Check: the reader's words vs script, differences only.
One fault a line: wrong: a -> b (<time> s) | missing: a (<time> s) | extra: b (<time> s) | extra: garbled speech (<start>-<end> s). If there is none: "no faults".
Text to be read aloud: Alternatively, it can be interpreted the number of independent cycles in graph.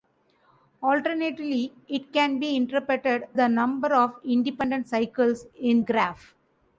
no faults